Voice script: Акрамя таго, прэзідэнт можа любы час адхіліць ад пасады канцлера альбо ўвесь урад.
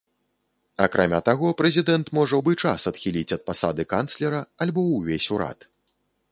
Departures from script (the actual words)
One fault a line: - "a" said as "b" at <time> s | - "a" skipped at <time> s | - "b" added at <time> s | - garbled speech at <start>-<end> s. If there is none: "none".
none